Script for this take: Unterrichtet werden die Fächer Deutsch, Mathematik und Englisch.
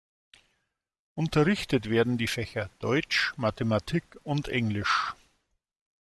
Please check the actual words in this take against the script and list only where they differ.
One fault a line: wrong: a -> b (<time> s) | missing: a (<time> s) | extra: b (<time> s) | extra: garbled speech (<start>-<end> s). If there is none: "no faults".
no faults